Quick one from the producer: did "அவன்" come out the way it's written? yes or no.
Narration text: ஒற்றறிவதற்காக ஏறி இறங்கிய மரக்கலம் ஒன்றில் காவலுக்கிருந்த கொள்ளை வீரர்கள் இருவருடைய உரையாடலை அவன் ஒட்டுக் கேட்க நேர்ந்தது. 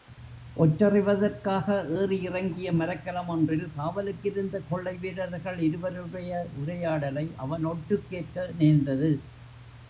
yes